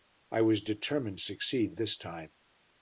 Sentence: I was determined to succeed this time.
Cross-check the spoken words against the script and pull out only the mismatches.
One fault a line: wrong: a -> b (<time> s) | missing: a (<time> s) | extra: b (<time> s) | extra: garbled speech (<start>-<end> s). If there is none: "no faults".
missing: to (1.2 s)